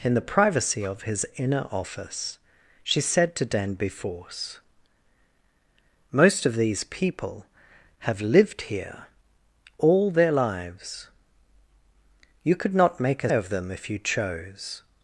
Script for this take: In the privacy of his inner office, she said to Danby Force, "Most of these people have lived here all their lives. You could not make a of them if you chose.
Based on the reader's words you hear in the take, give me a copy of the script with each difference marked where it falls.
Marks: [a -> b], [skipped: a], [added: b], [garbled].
In the privacy of his inner office, she said to Danby Force, "Most of these people have lived here all their lives. You could not make a of them if you chose.